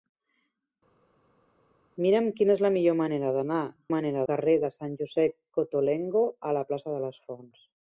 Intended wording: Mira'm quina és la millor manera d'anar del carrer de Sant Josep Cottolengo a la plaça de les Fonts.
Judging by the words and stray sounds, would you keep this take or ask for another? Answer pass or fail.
fail